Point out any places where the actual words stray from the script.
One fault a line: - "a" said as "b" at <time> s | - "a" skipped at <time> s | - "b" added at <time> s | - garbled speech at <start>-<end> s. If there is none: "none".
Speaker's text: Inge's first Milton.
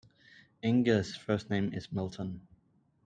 - "name is" added at 1.5 s